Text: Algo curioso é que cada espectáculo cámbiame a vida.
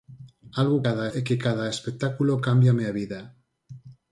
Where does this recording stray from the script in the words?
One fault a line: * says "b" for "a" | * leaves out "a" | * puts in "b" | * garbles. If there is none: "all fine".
* says "cada" for "curioso"